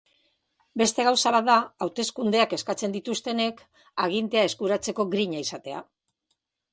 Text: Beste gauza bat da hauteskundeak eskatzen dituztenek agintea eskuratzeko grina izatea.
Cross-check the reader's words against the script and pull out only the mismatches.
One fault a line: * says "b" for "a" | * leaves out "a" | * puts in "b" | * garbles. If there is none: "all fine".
all fine